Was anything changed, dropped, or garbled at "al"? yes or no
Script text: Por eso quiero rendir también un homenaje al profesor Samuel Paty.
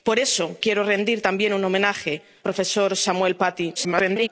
yes